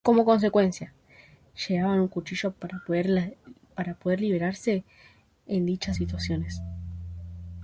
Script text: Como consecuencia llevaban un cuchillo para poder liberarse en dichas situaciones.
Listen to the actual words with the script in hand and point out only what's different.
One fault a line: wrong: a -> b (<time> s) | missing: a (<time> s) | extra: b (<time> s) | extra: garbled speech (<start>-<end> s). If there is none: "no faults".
no faults